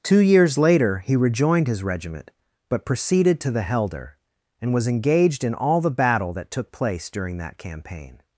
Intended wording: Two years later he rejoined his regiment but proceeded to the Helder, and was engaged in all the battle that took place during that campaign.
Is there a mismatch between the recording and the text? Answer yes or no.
no